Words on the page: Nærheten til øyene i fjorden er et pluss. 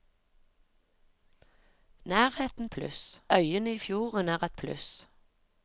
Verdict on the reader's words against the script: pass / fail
fail